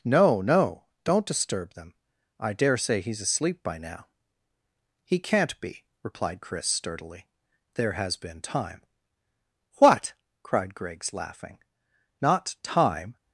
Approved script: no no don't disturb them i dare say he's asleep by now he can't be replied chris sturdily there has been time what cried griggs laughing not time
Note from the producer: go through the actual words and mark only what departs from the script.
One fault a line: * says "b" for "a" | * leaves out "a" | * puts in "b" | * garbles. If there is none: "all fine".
all fine